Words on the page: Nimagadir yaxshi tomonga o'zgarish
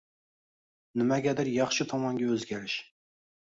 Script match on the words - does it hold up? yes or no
yes